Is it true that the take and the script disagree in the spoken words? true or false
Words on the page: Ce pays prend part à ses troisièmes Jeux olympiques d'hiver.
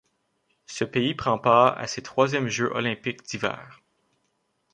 false